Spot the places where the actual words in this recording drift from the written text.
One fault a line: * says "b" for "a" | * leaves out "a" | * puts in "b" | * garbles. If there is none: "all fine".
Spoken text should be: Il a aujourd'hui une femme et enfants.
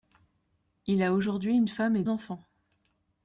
all fine